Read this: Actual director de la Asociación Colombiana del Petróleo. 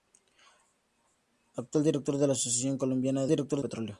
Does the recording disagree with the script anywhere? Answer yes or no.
yes